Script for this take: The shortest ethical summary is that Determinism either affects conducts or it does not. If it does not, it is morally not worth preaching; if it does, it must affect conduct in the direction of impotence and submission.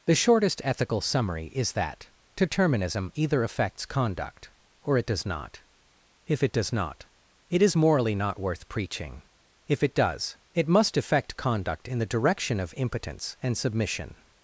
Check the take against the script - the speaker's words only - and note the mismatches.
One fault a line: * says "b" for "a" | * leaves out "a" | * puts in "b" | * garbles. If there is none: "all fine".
* says "conduct" for "conducts"